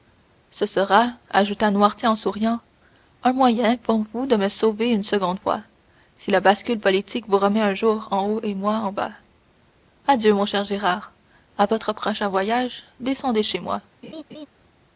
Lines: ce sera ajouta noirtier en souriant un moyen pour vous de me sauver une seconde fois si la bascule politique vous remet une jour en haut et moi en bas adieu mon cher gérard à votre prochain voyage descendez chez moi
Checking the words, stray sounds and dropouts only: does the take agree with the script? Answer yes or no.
no